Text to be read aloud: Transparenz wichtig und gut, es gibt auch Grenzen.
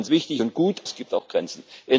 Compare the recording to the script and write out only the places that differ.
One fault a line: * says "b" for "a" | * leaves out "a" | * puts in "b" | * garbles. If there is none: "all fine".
all fine